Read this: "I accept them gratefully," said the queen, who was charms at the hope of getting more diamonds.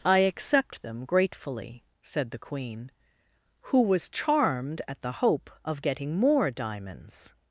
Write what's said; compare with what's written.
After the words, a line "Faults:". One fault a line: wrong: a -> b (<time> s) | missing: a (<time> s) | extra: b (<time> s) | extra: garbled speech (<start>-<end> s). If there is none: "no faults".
"I accept them gratefully," said the queen, who was charmed at the hope of getting more diamonds.
Faults:
wrong: charms -> charmed (4.1 s)